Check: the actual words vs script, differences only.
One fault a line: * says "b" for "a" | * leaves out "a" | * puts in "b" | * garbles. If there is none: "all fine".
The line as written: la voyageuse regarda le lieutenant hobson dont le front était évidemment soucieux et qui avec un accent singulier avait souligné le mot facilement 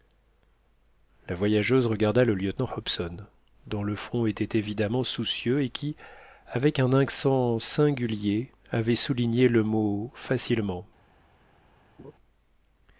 all fine